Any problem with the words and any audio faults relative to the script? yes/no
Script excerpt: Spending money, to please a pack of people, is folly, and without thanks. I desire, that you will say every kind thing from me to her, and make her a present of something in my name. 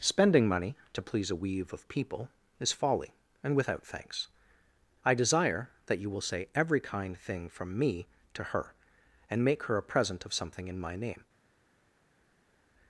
yes